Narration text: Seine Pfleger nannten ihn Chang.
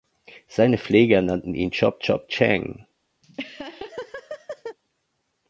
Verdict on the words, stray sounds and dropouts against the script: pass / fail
fail